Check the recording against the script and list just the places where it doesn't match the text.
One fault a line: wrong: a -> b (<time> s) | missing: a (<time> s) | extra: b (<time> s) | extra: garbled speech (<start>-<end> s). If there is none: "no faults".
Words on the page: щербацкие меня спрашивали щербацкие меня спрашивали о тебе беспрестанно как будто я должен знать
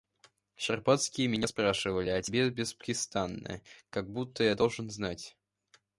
missing: щербацкие меня спрашивали (2.1 s)